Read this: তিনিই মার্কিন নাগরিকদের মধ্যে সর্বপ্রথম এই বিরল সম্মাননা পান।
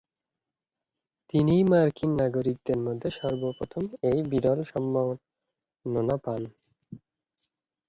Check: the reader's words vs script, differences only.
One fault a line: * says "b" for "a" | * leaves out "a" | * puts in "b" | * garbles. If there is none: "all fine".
all fine